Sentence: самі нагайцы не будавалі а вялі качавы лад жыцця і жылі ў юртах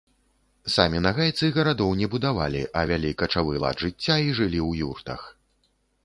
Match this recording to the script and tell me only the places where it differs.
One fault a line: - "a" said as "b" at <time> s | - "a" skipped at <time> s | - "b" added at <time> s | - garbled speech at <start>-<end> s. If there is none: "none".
- "гарадоў" added at 1.6 s